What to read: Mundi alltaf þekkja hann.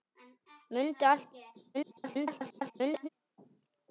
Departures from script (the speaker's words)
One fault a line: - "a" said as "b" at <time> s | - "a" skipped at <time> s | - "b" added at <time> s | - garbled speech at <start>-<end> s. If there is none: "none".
- garbled speech at 1.7-3.1 s